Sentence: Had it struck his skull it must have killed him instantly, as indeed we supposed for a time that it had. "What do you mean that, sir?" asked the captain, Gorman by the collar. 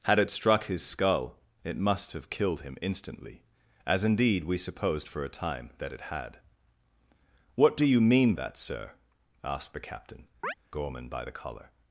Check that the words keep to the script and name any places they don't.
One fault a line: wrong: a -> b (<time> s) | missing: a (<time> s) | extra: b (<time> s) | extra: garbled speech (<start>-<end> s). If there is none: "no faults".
no faults